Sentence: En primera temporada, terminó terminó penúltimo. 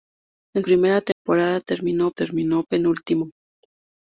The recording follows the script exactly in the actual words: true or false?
true